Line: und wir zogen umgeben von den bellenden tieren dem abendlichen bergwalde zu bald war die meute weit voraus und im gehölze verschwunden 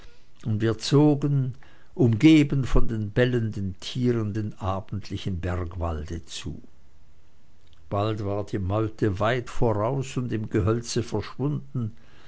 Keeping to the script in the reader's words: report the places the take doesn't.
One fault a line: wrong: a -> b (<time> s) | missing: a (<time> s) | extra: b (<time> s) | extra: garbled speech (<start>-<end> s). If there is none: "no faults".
no faults